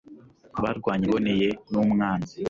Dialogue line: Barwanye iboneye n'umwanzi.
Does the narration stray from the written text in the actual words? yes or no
no